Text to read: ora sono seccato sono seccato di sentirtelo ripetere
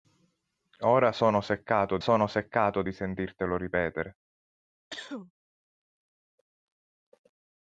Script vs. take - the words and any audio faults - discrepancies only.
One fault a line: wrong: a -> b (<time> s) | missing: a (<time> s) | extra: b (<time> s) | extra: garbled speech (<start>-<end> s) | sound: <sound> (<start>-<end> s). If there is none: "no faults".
sound: cough (4.9-5.3 s)